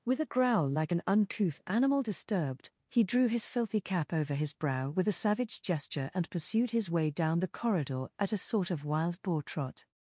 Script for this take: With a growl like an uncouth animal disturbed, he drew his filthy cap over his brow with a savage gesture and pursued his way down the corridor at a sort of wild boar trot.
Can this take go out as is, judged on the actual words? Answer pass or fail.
pass